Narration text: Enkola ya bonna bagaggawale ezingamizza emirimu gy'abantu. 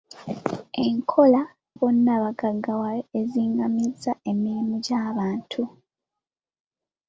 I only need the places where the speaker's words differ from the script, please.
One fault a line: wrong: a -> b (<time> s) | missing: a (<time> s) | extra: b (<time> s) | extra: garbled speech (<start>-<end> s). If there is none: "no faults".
missing: ya (1.4 s)